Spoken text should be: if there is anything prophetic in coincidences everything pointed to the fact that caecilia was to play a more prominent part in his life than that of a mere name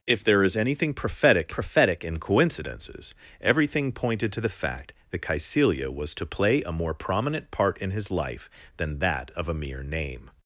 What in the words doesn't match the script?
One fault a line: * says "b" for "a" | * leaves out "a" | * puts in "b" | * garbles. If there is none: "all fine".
* puts in "prophetic"